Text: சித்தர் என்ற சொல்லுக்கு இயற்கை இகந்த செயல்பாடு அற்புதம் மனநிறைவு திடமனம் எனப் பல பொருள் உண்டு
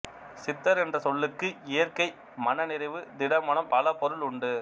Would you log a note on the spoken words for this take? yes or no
yes